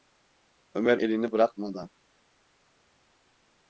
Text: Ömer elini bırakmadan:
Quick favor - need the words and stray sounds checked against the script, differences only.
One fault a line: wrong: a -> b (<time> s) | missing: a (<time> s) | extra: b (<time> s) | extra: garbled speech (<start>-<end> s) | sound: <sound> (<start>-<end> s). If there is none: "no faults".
no faults